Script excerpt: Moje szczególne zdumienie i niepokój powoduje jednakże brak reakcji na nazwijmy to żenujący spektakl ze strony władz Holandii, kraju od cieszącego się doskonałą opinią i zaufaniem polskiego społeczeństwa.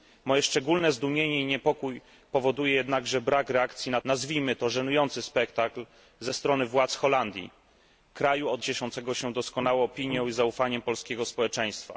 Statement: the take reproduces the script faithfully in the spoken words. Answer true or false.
true